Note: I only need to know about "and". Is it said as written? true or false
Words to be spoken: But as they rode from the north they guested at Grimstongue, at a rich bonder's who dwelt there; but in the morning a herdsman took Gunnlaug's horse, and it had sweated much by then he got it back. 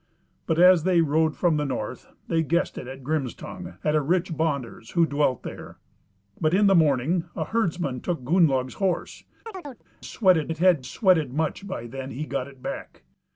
false